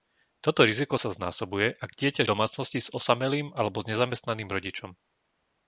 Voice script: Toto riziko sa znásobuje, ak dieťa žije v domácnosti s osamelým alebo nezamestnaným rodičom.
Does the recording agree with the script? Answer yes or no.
no